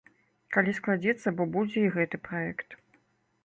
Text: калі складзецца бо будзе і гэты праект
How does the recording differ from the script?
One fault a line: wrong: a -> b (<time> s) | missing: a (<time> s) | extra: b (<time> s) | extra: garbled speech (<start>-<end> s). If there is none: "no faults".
no faults